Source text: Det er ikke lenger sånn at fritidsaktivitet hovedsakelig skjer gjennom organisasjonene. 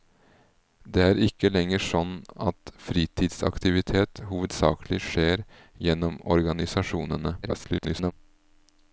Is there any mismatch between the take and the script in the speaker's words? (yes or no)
yes